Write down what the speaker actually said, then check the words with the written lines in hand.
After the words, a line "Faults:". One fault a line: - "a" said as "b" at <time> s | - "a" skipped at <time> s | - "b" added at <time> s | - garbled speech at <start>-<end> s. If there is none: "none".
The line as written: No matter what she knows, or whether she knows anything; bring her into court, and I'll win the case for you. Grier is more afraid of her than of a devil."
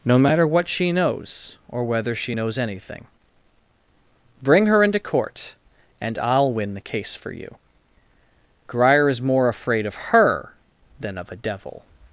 No matter what she knows, or whether she knows anything; bring her into court, and I'll win the case for you. Grier is more afraid of her than of a devil."
Faults:
none